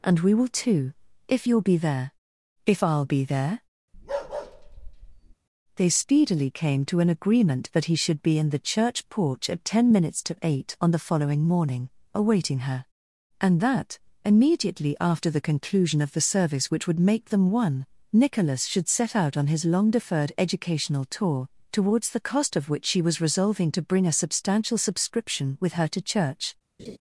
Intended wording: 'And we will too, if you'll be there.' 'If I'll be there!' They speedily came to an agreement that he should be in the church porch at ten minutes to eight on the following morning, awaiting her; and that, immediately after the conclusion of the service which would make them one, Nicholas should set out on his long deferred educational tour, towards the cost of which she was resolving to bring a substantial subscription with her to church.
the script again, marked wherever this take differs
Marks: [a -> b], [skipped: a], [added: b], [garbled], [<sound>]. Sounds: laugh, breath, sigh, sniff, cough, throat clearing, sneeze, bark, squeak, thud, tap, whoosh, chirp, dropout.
'And we will too, if you'll be there.' 'If I'll be there!' [bark] They speedily came to an agreement that he should be in the church porch at ten minutes to eight on the following morning, awaiting her; and that, immediately after the conclusion of the service which would make them one, Nicholas should set out on his long deferred educational tour, towards the cost of which she was resolving to bring a substantial subscription with her to church. [laugh]